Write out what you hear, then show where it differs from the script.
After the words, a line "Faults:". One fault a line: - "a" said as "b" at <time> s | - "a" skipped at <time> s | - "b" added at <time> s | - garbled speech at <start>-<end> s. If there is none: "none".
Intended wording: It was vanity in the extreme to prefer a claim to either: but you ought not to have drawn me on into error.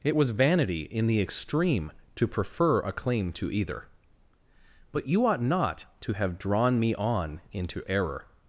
It was vanity in the extreme to prefer a claim to either: but you ought not to have drawn me on into error.
Faults:
none